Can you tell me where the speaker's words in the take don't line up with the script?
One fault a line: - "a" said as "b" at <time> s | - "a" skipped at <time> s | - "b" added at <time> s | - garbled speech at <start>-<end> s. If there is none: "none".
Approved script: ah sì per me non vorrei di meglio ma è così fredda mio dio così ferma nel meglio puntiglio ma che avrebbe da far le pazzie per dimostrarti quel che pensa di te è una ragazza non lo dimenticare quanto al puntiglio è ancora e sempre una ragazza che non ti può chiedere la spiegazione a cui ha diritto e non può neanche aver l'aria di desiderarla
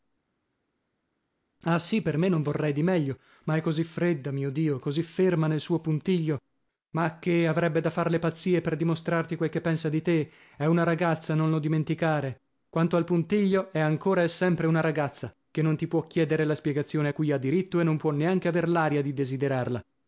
- "meglio" said as "suo" at 5.6 s